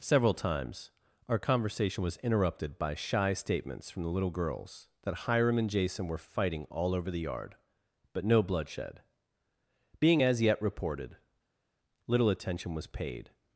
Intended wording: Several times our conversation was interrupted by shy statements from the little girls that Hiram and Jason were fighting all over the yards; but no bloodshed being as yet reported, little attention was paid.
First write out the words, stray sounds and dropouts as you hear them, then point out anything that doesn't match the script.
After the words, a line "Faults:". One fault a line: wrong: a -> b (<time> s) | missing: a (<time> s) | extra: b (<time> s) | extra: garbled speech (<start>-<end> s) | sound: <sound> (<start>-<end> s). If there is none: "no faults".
Several times our conversation was interrupted by shy statements from the little girls that Hiram and Jason were fighting all over the yard; but no bloodshed being as yet reported, little attention was paid.
Faults:
wrong: yards -> yard (7.3 s)